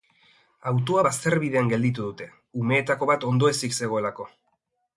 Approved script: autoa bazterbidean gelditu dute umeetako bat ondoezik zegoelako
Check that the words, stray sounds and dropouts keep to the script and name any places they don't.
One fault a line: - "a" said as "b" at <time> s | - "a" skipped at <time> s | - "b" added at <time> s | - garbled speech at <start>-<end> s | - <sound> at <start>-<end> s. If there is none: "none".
none